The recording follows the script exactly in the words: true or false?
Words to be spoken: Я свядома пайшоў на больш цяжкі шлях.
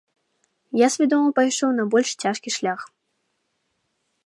true